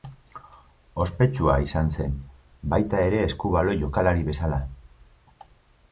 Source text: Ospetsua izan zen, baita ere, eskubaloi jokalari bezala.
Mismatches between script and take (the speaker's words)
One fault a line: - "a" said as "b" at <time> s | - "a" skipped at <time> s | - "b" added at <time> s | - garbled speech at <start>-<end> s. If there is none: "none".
none